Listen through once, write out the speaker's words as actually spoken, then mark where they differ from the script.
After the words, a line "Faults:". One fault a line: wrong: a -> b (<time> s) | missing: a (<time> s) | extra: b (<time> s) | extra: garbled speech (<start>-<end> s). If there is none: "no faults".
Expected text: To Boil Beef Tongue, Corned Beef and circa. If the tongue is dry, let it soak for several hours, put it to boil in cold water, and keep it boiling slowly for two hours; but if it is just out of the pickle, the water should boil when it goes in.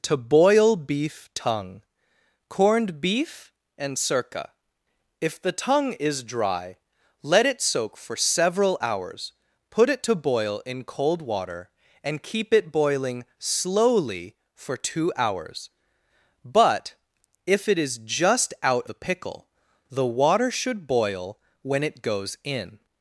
To Boil Beef Tongue, Corned Beef and circa. If the tongue is dry, let it soak for several hours, put it to boil in cold water, and keep it boiling slowly for two hours; but if it is just out the pickle, the water should boil when it goes in.
Faults:
missing: of (18.9 s)